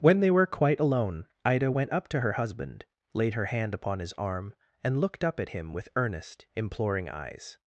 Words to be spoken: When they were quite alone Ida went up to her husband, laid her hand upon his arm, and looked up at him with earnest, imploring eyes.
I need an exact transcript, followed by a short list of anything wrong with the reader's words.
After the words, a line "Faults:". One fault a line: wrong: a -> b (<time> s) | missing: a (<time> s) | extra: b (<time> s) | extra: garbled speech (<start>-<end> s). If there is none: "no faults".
When they were quite alone Ida went up to her husband, laid her hand upon his arm, and looked up at him with earnest, imploring eyes.
Faults:
no faults